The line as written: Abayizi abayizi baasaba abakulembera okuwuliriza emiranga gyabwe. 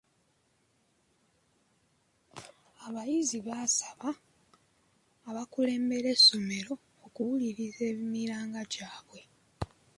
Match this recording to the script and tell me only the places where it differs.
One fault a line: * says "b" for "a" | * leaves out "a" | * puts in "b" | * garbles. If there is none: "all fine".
* leaves out "abayizi"
* puts in "essomero"